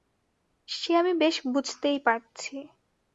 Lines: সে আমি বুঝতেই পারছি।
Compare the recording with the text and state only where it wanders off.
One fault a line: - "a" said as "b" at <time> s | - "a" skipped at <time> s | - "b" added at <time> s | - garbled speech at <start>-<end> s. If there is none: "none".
- "বেশ" added at 1.1 s